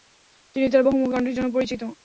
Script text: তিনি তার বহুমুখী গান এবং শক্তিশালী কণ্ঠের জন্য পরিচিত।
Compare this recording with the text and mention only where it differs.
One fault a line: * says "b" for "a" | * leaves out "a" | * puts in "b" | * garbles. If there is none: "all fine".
* leaves out "গান এবং শক্তিশালী"